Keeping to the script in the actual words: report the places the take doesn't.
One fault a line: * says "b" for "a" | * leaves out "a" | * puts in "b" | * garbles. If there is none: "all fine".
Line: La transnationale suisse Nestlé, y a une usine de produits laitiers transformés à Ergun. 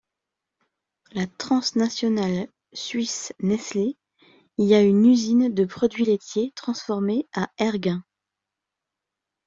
all fine